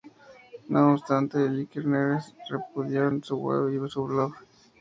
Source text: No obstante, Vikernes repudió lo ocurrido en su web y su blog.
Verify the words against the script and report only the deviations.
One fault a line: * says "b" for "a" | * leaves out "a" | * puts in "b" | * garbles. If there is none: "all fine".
* leaves out "lo ocurrido"